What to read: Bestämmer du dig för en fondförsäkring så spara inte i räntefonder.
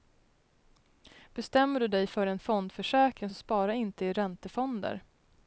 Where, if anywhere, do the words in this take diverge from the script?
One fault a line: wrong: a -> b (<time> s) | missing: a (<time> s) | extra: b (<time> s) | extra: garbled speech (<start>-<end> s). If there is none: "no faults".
no faults